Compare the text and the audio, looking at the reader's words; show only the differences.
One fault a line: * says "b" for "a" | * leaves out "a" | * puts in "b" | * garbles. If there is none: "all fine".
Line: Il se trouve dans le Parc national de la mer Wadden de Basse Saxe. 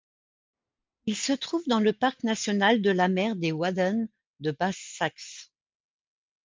* puts in "des"